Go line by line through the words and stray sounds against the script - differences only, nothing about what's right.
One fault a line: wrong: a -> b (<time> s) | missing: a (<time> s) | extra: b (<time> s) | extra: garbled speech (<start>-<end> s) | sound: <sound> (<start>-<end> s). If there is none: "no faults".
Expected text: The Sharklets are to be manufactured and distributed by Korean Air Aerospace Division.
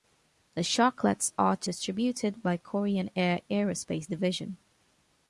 missing: be manufactured and (1.7 s)